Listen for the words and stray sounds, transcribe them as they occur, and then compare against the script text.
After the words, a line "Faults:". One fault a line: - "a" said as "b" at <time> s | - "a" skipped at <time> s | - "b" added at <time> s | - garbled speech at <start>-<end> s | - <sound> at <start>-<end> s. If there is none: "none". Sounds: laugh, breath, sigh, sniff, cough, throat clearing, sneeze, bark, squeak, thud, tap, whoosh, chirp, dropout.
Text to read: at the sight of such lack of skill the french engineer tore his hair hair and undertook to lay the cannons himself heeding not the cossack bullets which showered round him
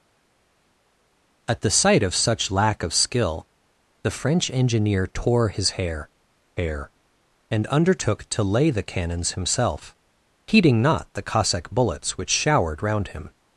at the sight of such lack of skill the french engineer tore his hair hair and undertook to lay the cannons himself heeding not the cossack bullets which showered round him
Faults:
none